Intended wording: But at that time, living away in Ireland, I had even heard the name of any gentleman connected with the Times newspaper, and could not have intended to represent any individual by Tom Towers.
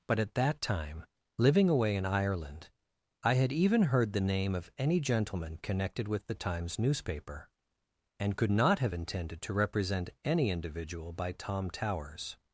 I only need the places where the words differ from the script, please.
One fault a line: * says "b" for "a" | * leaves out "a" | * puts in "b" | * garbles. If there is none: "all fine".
all fine